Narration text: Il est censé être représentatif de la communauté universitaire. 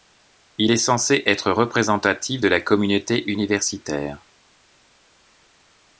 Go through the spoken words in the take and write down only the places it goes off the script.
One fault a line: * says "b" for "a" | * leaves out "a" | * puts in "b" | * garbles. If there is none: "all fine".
all fine